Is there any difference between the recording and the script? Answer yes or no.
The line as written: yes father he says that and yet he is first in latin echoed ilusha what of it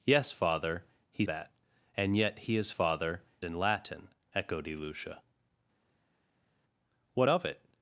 yes